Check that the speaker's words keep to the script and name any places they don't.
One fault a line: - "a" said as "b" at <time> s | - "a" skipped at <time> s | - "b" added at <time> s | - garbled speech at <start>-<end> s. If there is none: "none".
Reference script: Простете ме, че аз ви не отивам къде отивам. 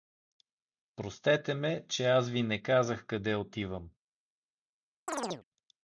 - "отивам" said as "казах" at 2.6 s